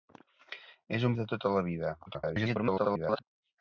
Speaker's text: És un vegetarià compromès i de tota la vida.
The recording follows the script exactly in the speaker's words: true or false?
false